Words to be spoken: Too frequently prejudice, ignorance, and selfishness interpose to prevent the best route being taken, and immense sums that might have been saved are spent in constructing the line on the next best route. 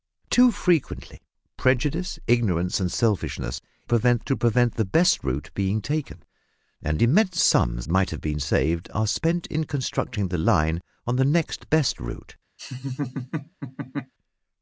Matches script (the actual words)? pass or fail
fail